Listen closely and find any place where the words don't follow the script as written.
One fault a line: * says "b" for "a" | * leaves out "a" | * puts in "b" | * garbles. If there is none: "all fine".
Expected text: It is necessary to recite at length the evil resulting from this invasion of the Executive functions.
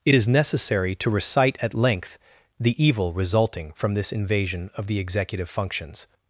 all fine